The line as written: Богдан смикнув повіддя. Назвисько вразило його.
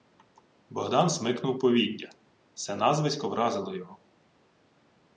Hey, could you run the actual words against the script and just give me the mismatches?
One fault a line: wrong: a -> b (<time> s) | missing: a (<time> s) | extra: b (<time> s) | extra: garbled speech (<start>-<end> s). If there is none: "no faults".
extra: Се (2.5 s)